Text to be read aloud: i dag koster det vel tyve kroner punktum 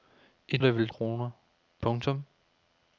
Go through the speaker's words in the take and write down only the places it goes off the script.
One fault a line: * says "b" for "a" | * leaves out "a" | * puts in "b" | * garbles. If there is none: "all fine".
* leaves out "dag koster"
* leaves out "tyve"